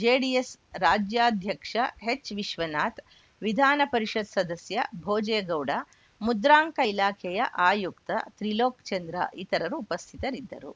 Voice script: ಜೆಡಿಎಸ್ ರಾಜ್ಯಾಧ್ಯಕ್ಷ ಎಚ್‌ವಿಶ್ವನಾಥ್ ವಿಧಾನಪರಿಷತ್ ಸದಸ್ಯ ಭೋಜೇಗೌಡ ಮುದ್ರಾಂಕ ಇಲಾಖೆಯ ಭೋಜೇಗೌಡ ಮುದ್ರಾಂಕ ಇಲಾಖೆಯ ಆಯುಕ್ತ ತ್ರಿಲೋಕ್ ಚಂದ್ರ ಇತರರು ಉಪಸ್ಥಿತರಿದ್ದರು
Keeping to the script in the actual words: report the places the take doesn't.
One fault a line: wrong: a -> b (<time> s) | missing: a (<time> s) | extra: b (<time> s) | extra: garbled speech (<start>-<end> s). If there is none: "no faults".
missing: ಭೋಜೇಗೌಡ ಮುದ್ರಾಂಕ ಇಲಾಖೆಯ (7.4 s)